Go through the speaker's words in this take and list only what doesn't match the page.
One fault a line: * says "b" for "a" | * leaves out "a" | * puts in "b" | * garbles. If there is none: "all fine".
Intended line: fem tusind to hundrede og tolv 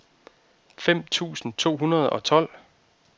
all fine